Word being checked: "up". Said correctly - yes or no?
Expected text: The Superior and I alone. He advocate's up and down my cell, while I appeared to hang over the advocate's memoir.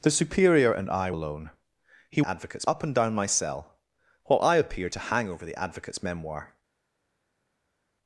yes